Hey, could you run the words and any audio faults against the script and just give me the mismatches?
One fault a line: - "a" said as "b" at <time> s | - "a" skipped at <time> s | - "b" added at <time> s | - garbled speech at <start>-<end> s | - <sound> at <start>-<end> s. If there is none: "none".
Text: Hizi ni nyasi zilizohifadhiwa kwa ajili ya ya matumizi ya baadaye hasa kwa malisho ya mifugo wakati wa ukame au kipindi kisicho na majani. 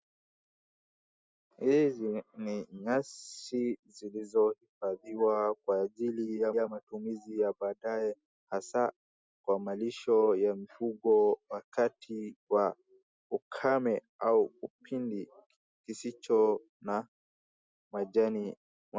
none